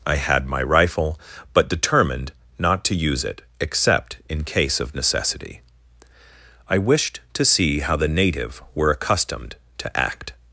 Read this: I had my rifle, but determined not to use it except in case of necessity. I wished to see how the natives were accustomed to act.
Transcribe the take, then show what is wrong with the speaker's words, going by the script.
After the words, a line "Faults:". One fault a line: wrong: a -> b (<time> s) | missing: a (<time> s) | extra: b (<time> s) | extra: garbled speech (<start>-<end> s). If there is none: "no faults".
I had my rifle, but determined not to use it except in case of necessity. I wished to see how the native were accustomed to act.
Faults:
wrong: natives -> native (8.1 s)